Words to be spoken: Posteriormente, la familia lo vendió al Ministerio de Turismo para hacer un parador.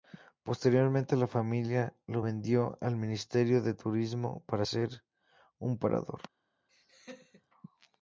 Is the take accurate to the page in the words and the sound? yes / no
no